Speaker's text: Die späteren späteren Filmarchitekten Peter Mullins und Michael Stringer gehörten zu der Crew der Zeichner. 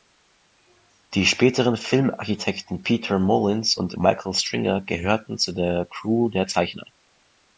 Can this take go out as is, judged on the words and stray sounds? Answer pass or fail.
fail